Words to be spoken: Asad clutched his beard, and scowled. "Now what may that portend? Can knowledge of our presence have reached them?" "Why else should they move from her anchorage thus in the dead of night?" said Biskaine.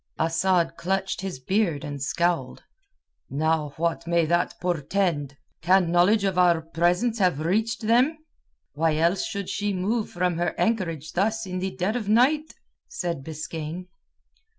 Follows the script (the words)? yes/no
no